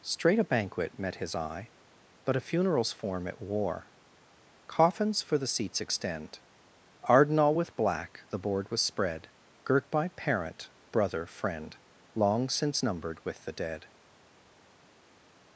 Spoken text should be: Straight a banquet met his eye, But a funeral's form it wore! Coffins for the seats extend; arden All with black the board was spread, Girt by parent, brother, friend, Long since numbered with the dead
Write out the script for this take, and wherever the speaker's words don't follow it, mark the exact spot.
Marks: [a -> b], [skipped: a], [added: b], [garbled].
Straight a banquet met his eye, But a funeral's form it wore! Coffins for the seats extend; arden All with black the board was spread, Girt by parent, brother, friend, Long since numbered with the dead